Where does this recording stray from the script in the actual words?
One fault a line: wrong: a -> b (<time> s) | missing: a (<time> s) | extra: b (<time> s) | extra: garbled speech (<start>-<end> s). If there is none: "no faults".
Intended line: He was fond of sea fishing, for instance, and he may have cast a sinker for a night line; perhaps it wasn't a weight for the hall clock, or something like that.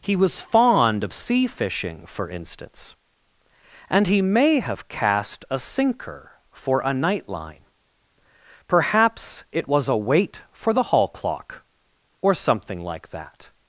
wrong: wasn't -> was (9.7 s)